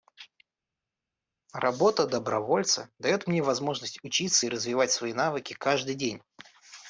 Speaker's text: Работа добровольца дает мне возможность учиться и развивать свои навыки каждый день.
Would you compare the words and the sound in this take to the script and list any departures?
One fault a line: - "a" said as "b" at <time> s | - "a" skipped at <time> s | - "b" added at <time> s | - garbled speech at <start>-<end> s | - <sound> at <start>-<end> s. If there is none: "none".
none